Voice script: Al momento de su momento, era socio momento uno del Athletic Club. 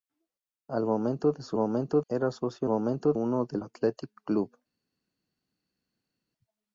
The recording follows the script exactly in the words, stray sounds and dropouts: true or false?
true